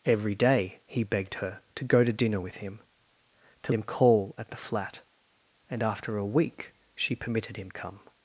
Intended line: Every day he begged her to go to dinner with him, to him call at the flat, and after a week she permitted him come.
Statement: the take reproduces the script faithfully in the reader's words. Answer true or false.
true